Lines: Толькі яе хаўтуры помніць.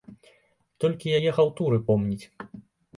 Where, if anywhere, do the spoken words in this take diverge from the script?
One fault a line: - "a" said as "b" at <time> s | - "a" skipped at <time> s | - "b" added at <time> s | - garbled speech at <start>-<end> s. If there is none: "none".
none